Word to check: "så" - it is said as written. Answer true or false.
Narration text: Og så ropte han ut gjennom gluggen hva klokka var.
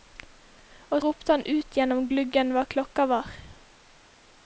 false